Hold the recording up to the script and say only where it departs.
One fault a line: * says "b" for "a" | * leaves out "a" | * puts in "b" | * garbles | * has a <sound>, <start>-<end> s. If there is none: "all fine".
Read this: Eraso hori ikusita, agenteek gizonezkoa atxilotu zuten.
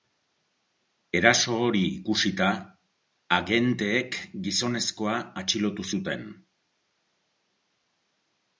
all fine